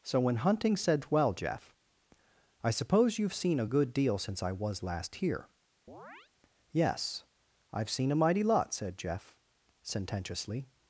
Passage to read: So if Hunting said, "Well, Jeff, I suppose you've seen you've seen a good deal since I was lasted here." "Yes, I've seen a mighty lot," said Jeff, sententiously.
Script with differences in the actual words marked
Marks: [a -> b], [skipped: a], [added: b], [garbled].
So [if -> when] Hunting said, "Well, Jeff, I suppose you've seen [skipped: you've seen] a good deal since I was [lasted -> last] here." "Yes, I've seen a mighty lot," said Jeff, sententiously.